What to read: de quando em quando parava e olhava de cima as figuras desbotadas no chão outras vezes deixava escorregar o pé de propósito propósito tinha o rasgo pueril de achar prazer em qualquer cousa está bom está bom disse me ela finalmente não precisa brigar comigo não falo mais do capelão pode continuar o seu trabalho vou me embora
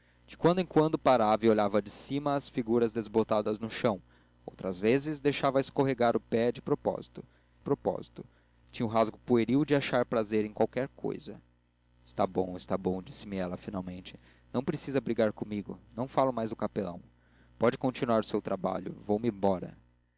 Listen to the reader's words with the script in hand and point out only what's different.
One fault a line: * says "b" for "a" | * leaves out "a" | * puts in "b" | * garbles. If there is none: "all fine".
all fine